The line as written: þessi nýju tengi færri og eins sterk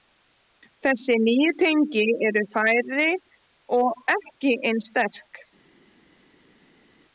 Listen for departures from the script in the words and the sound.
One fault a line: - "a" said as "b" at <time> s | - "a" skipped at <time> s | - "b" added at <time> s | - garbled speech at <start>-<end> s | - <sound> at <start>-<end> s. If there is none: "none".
- "eru" added at 2.3 s
- "ekki" added at 4.2 s